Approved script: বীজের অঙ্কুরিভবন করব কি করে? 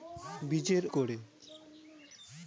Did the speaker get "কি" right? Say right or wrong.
wrong